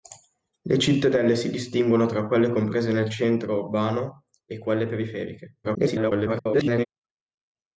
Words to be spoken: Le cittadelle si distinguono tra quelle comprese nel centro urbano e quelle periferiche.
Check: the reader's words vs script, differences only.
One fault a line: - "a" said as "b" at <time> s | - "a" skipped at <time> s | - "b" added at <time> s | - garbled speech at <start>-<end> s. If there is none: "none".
- garbled speech at 5.6-6.9 s